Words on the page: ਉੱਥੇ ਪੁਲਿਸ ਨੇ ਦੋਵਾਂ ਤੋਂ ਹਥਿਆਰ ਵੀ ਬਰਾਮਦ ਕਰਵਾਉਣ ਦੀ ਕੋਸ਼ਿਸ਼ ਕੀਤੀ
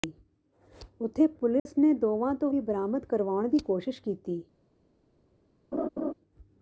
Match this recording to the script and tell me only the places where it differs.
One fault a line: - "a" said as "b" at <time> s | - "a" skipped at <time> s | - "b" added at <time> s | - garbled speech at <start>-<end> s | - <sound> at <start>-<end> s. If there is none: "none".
- dropout at 1.6-1.7 s
- "ਹਥਿਆਰ" skipped at 2.5 s
- laugh at 5.7-6.1 s